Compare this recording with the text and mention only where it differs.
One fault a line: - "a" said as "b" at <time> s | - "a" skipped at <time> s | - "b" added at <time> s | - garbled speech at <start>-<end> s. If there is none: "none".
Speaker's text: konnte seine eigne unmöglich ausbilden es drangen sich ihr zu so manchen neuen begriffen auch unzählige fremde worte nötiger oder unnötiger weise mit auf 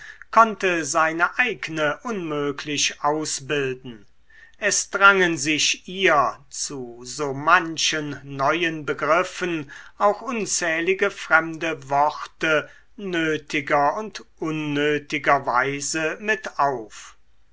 - "oder" said as "und" at 14.0 s